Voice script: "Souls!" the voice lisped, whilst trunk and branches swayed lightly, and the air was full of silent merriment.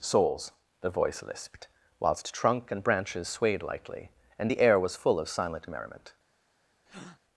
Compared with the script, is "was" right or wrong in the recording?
right